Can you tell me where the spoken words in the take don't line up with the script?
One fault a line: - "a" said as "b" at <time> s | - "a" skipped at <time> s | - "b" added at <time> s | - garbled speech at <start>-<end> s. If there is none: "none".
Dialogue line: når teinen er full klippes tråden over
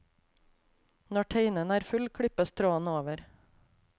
none